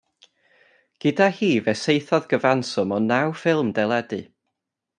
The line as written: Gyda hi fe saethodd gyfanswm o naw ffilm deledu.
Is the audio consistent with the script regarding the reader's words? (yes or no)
yes